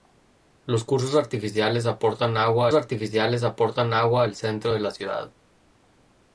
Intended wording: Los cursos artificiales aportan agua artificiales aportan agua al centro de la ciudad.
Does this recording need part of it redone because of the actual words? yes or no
no